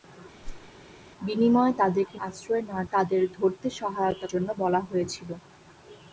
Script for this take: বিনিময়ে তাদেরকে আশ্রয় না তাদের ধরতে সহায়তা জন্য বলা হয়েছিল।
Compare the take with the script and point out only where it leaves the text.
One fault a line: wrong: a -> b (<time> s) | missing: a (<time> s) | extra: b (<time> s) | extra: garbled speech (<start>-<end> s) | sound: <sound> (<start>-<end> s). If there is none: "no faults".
sound: whoosh (0.4-0.7 s)